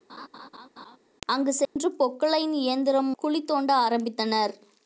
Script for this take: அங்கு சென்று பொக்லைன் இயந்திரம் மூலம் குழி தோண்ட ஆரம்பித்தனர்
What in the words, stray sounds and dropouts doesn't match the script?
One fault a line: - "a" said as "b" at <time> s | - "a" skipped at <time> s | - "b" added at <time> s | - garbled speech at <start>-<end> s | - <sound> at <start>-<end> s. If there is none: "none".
- laugh at 0.1-1.0 s
- dropout at 1.6-1.8 s
- "மூலம்" skipped at 3.1 s